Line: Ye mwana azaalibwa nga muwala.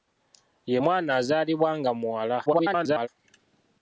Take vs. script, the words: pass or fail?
fail